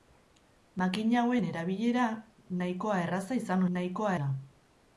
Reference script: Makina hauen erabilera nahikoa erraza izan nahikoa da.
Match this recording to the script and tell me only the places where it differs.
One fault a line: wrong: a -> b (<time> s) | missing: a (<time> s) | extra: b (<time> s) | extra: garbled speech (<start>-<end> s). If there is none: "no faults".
no faults